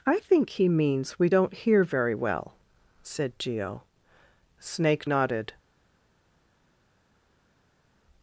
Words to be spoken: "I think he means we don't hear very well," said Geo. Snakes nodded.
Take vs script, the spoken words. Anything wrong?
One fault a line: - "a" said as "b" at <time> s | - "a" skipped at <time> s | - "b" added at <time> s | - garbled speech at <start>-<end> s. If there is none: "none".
- "Snakes" said as "Snake" at 4.6 s